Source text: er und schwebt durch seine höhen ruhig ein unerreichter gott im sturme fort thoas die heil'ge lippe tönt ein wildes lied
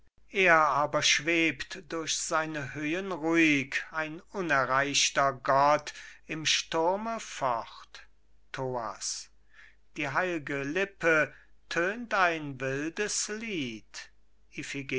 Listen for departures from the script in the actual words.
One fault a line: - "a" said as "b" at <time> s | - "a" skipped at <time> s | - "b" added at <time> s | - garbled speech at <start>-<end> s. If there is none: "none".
- "und" said as "aber" at 0.6 s